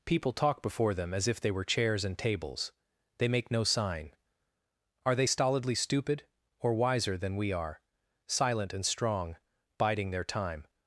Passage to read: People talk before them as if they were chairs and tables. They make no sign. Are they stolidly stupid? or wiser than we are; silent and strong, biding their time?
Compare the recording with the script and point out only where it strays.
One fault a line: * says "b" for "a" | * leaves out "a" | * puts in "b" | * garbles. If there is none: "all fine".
all fine